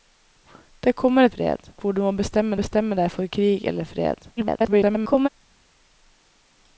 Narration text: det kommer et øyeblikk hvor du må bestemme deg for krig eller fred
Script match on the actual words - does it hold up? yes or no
no